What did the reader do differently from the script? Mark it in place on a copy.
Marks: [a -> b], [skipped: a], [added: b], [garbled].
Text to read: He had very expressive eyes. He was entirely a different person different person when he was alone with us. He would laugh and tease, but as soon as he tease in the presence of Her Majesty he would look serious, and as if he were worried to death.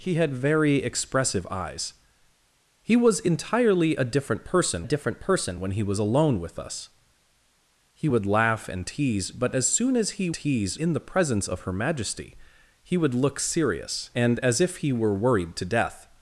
He had very expressive eyes. He was entirely a different person different person when he was alone with us. He would laugh and tease, but as soon as he tease in the presence of Her Majesty he would look serious, and as if he were worried to death.